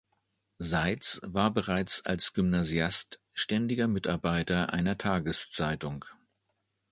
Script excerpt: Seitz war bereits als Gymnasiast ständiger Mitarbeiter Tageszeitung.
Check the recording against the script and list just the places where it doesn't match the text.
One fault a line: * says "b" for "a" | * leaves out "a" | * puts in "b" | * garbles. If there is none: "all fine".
* puts in "einer"